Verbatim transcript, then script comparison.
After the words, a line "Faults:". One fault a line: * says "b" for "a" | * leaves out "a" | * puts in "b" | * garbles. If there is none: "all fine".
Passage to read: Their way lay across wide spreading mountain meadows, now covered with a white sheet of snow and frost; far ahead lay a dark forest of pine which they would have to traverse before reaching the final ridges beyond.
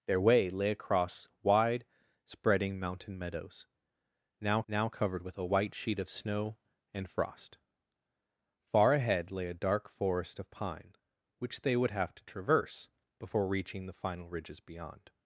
Their way lay across wide spreading mountain meadows, now now covered with a white sheet of snow and frost; far ahead lay a dark forest of pine which they would have to traverse before reaching the final ridges beyond.
Faults:
* puts in "now"